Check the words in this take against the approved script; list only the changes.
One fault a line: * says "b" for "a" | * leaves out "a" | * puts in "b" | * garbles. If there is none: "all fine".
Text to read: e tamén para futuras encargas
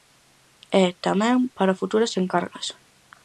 all fine